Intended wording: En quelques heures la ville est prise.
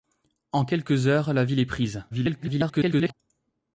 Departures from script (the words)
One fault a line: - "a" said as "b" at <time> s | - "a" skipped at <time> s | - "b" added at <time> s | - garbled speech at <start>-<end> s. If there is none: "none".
- garbled speech at 2.1-3.1 s